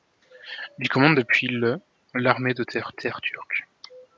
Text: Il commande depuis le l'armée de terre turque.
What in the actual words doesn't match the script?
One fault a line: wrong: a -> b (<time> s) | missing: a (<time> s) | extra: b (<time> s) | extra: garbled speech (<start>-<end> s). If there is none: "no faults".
extra: terre (2.9 s)